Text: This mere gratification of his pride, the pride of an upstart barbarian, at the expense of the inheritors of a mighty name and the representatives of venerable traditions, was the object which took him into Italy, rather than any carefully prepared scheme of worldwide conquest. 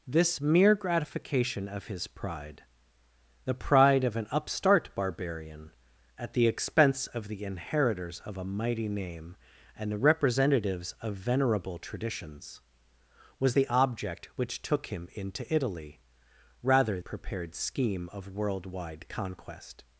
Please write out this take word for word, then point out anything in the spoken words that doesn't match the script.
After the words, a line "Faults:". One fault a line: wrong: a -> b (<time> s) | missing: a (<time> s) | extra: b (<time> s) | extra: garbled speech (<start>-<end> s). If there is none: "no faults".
This mere gratification of his pride, the pride of an upstart barbarian, at the expense of the inheritors of a mighty name and the representatives of venerable traditions, was the object which took him into Italy, rather prepared scheme of worldwide conquest.
Faults:
missing: than any carefully (17.0 s)